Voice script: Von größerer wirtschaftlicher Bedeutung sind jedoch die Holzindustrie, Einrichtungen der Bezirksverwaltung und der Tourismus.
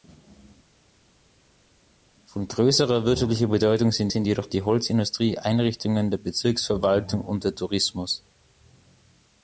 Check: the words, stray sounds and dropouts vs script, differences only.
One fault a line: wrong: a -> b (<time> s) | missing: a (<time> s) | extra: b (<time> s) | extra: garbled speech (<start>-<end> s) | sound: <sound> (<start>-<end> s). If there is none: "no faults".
extra: sind (4.1 s)